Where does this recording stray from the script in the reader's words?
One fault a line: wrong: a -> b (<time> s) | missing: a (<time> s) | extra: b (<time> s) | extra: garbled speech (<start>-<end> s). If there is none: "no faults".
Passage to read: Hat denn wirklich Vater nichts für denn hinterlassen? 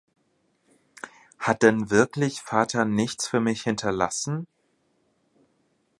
wrong: denn -> mich (3.4 s)